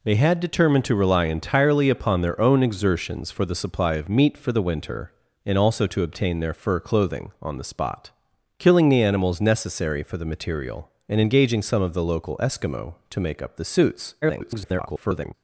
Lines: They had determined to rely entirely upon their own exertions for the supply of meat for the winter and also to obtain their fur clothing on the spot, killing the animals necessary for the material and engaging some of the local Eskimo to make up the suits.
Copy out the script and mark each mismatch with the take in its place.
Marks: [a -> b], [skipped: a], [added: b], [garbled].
They had determined to rely entirely upon their own exertions for the supply of meat for the winter and also to obtain their fur clothing on the spot, killing the animals necessary for the material and engaging some of the local Eskimo to make up the suits. [garbled]